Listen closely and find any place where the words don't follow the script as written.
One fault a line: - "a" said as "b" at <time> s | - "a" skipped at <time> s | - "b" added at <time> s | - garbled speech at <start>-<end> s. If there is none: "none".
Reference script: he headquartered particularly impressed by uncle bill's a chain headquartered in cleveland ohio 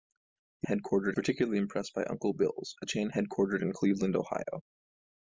none